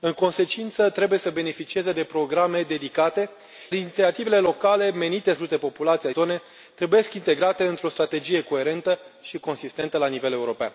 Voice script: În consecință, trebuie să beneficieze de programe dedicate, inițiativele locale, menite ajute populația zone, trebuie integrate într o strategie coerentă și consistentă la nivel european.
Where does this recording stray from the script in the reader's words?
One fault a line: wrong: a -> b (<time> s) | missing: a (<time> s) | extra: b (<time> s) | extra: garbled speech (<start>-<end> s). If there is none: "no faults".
no faults